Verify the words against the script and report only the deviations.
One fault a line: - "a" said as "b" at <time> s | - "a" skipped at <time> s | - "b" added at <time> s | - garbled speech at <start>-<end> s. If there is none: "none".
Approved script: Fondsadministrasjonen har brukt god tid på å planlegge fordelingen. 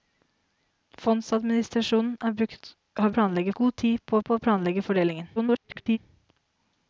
- "brukt" said as "planlegge" at 3.2 s
- "på" added at 4.2 s
- garbled speech at 5.4-6.0 s